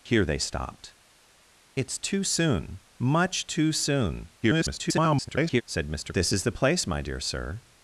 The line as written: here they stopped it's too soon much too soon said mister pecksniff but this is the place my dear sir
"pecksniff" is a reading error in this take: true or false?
true